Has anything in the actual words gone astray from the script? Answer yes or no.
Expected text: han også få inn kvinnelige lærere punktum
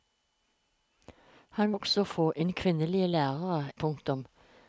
no